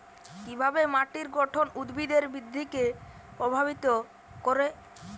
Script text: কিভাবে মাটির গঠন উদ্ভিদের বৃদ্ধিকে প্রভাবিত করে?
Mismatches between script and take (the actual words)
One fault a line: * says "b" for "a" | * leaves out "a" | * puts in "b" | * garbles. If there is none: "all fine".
all fine